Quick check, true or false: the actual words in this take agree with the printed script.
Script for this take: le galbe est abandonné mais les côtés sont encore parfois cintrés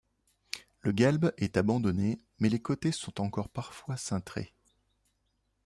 true